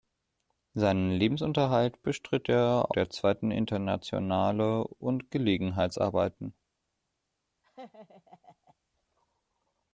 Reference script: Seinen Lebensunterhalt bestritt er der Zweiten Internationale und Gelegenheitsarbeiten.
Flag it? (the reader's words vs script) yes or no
no